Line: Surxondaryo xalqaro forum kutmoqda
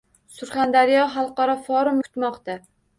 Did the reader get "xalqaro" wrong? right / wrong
right